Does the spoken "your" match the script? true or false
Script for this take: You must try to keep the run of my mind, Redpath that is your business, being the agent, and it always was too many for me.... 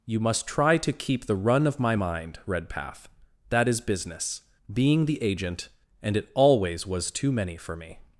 false